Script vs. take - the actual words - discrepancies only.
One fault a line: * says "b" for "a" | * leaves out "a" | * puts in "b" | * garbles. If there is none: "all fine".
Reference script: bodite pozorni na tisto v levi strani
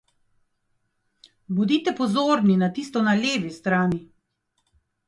* says "na" for "v"